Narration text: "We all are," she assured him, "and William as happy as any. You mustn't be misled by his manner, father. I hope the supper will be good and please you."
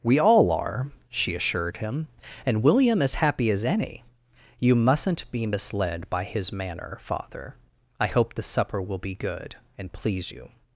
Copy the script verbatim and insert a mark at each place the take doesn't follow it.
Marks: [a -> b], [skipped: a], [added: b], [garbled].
"We all are," she assured him, "and William as happy as any. You mustn't be misled by his manner, father. I hope the supper will be good and please you."